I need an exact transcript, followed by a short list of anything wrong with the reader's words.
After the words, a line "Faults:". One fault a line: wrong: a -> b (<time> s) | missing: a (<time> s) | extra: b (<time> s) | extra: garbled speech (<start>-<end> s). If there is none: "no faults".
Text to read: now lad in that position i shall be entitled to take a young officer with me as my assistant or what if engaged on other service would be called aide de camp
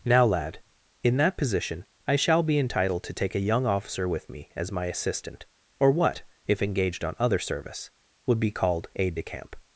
now lad in that position i shall be entitled to take a young officer with me as my assistant or what if engaged on other service would be called aide de camp
Faults:
no faults